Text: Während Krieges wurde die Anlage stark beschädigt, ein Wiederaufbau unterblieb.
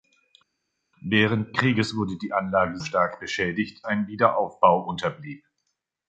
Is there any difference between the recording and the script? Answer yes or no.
no